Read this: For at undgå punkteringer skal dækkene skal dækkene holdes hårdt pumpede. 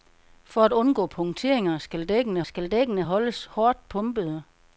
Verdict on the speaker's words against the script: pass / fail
pass